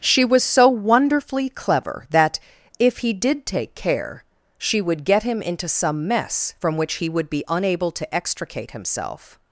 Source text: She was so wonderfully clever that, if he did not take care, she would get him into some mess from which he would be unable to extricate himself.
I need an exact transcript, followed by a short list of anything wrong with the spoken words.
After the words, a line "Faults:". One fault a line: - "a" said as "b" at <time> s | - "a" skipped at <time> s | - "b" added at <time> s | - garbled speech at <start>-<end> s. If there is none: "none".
She was so wonderfully clever that, if he did take care, she would get him into some mess from which he would be unable to extricate himself.
Faults:
- "not" skipped at 3.5 s